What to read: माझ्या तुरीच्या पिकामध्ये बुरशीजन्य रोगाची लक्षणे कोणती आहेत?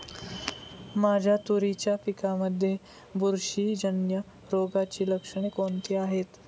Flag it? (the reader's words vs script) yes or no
no